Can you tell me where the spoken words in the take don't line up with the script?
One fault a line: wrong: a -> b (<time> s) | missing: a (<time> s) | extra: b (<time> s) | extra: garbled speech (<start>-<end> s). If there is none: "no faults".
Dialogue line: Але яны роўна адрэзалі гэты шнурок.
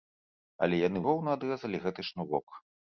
no faults